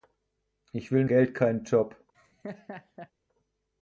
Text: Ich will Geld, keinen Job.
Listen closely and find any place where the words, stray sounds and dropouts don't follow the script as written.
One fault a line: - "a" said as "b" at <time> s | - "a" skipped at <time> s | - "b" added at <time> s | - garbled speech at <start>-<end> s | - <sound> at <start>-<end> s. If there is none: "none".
- laugh at 2.1-3.1 s